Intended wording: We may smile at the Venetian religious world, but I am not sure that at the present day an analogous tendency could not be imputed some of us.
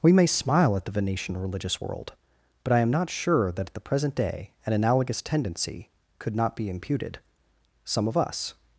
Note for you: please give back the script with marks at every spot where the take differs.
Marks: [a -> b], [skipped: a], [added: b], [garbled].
We may smile at the Venetian religious world, but I am not sure that at the present day an analogous tendency could not be imputed some of us.